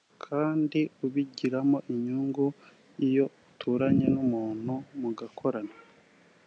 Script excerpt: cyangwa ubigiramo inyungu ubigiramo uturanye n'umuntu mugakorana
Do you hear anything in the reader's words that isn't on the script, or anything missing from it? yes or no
yes